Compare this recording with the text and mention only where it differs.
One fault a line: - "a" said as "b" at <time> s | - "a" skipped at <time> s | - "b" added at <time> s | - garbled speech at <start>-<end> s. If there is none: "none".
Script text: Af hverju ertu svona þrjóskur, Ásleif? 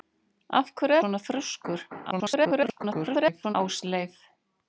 - "ertu" skipped at 1.0 s
- garbled speech at 2.1-3.6 s